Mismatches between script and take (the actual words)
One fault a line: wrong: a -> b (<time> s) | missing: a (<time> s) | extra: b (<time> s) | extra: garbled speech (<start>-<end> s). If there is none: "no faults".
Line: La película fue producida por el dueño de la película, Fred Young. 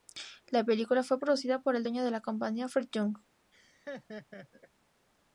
wrong: película -> compañía (2.2 s)